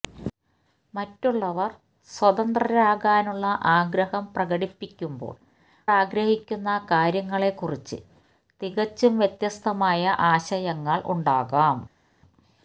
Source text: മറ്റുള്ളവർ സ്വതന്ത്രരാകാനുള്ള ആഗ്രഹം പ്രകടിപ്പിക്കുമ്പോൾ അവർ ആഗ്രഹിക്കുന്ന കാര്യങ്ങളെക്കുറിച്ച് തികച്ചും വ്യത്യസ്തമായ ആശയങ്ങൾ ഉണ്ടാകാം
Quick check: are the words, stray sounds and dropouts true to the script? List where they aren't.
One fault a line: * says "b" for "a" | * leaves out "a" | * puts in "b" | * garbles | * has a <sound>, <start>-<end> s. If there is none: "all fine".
* leaves out "അവർ"